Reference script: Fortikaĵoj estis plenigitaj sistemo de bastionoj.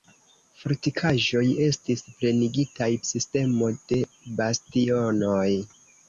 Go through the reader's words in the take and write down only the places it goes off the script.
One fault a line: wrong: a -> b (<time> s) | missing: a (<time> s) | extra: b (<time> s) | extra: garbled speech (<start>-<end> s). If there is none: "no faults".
no faults